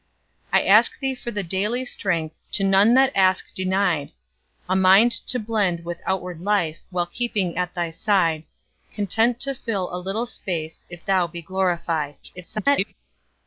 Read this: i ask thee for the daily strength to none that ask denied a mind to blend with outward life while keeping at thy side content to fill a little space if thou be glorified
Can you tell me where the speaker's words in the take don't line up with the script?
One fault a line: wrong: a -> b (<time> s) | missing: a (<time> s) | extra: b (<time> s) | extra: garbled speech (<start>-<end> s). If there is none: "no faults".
extra: garbled speech (12.2-12.9 s)